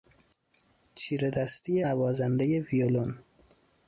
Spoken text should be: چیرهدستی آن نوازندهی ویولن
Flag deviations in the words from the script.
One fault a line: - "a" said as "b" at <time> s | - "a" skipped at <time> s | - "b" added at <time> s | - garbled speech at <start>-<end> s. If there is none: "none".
- "آن" skipped at 1.9 s